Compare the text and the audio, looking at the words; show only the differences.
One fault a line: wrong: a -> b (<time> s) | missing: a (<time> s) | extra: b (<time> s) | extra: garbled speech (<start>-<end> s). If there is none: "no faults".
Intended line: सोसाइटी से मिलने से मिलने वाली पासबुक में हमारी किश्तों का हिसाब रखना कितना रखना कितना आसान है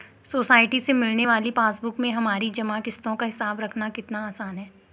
missing: से मिलने (1.3 s)
extra: जमा (2.5 s)
missing: रखना कितना (4.3 s)